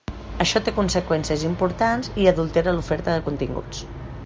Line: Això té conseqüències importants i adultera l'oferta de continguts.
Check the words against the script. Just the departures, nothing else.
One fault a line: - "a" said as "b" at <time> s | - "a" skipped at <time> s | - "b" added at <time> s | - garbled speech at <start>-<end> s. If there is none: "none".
none